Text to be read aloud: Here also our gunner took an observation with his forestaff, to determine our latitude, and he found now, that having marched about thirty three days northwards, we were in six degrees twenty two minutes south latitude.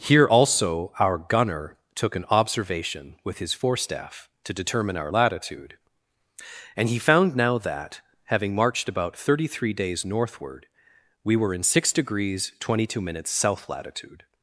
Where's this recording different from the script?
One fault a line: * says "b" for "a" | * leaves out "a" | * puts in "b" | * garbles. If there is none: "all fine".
* says "northward" for "northwards"